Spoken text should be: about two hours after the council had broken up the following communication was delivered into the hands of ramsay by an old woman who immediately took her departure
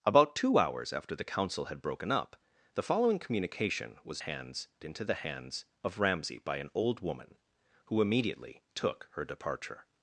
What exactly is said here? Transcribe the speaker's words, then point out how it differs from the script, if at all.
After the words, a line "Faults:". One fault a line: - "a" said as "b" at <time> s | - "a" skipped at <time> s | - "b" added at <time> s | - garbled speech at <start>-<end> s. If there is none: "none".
about two hours after the council had broken up the following communication was hands into the hands of ramsay by an old woman who immediately took her departure
Faults:
- "delivered" said as "hands" at 4.2 s